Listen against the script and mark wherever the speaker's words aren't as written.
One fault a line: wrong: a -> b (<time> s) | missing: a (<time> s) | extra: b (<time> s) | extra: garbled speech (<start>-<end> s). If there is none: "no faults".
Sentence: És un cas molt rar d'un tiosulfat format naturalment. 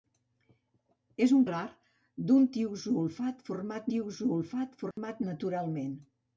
wrong: cas molt rar d'un -> rar d'un tiosulfat format (1.5 s)